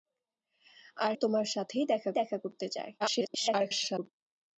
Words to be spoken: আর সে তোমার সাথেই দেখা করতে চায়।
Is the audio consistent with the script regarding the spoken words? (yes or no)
no